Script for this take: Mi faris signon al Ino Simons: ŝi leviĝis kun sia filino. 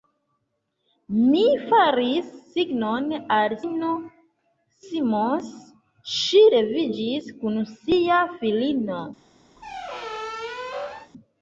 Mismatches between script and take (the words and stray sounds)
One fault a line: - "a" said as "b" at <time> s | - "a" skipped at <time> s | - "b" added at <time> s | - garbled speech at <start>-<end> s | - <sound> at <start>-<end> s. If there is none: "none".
- squeak at 9.6-11.1 s